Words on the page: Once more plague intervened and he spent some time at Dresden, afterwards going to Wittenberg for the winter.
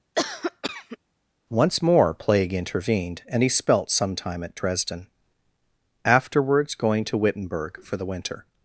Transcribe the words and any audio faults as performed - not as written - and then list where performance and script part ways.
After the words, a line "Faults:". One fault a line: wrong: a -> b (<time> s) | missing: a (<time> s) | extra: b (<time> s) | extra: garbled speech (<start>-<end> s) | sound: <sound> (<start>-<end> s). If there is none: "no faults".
Once more plague intervened and he spelt some time at Dresden, afterwards going to Wittenberg for the winter.
Faults:
sound: cough (0.1-1.0 s)
wrong: spent -> spelt (3.5 s)